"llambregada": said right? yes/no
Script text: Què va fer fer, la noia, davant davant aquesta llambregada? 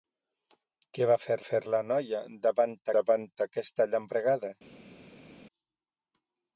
yes